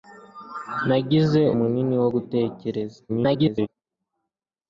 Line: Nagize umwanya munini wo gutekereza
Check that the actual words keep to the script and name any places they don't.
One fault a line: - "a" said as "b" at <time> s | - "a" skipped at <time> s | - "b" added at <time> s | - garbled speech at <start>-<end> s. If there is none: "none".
- "umwanya" skipped at 1.4 s
- garbled speech at 3.1-3.7 s